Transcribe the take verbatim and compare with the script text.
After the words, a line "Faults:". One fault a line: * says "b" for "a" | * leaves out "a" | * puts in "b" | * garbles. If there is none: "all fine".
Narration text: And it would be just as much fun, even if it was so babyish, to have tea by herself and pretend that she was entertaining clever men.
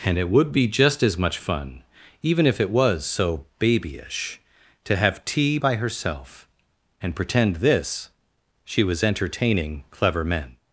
And it would be just as much fun, even if it was so babyish, to have tea by herself and pretend this she was entertaining clever men.
Faults:
* says "this" for "that"